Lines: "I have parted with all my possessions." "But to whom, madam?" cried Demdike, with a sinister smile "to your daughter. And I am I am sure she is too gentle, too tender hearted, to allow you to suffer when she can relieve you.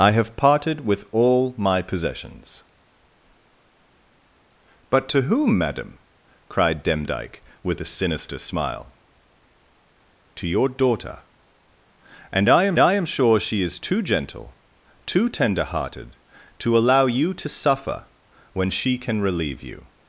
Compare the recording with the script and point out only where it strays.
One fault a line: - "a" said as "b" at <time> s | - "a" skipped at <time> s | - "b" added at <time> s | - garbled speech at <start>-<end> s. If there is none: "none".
none